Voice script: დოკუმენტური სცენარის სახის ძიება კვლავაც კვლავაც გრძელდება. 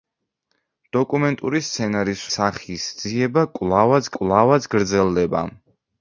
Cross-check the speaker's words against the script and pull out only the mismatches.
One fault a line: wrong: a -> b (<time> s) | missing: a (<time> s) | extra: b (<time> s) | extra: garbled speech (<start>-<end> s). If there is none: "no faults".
no faults